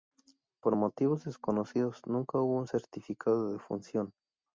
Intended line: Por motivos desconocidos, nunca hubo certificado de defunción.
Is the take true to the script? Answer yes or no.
no